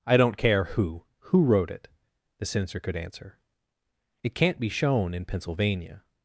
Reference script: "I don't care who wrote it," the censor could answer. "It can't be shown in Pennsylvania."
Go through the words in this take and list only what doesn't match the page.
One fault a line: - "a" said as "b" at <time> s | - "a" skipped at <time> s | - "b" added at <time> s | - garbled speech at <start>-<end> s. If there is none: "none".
- "who" added at 1.2 s